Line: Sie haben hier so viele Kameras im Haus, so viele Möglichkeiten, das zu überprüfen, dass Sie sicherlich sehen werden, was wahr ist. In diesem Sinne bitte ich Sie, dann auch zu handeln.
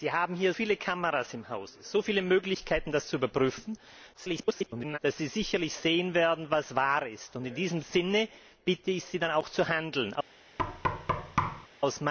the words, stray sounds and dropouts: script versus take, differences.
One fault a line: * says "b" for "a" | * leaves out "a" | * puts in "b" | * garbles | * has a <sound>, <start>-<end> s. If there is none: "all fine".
* leaves out "so"
* garbles
* has a thud, 10.6-11.7 s